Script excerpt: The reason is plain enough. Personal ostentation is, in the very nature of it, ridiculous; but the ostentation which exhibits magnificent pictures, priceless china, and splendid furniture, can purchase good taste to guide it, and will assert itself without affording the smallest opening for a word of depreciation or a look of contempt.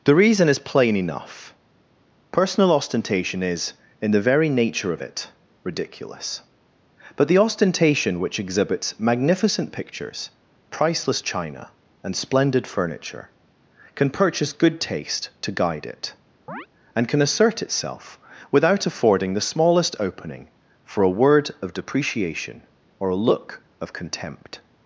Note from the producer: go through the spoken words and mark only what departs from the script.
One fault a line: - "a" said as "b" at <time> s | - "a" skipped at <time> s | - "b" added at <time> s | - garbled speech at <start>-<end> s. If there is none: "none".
- "will" said as "can" at 17.1 s